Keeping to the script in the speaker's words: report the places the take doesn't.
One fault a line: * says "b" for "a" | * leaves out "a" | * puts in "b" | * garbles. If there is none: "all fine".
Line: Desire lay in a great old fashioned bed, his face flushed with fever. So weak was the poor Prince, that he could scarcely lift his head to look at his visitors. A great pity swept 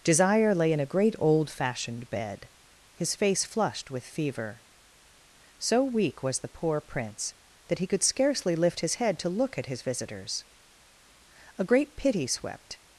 all fine